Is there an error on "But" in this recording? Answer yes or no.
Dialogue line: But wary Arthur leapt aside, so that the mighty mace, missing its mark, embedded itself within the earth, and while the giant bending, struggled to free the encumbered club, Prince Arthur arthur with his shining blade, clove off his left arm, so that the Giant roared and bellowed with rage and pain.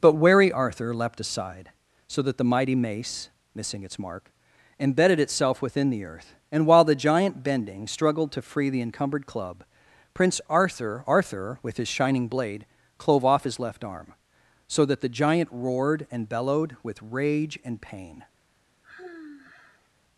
no